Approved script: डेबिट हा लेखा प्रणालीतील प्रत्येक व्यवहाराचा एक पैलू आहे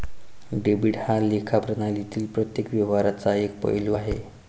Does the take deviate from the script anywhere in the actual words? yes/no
no